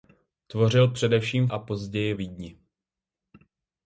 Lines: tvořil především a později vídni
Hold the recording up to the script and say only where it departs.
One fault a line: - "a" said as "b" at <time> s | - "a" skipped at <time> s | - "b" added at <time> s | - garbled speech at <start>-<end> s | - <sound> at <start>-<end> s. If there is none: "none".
none